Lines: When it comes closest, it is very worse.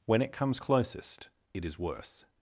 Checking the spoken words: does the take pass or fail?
fail